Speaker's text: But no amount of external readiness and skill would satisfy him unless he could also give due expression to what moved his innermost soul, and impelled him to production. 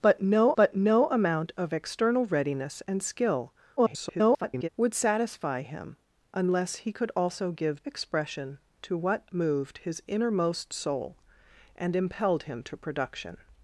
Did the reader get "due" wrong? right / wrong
wrong